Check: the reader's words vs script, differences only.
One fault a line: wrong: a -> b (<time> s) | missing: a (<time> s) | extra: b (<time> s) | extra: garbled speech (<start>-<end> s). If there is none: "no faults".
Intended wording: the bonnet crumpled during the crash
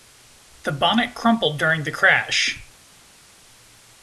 no faults